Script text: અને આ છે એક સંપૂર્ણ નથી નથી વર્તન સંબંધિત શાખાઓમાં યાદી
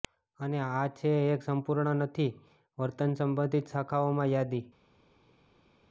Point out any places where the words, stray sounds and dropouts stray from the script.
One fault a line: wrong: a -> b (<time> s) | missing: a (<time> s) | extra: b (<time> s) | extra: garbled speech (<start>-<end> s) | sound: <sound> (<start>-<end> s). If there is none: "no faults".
missing: નથી (2.3 s)